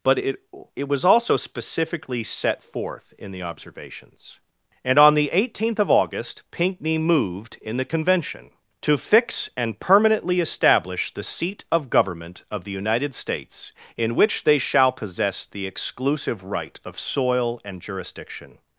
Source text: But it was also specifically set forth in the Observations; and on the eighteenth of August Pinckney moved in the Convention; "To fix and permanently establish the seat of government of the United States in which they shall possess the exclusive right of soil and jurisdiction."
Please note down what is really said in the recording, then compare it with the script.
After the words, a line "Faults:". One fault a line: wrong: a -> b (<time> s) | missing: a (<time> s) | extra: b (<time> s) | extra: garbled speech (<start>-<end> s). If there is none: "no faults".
But it it was also specifically set forth in the Observations; and on the eighteenth of August Pinckney moved in the Convention; "To fix and permanently establish the seat of government of the United States in which they shall possess the exclusive right of soil and jurisdiction."
Faults:
extra: it (0.8 s)